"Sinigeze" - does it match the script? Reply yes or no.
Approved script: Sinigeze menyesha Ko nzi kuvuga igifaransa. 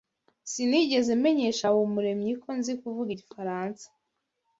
yes